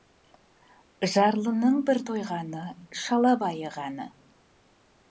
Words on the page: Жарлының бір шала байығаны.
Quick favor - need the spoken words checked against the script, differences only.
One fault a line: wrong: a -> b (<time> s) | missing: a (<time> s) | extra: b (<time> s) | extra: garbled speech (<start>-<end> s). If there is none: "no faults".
extra: тойғаны (2.1 s)